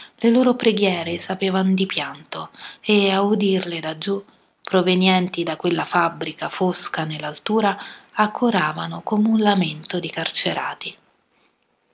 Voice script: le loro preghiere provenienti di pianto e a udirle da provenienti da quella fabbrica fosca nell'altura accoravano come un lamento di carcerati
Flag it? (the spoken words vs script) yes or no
yes